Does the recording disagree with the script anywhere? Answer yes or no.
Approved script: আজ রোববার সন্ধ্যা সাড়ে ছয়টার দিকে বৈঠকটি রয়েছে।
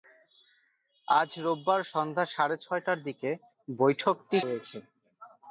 no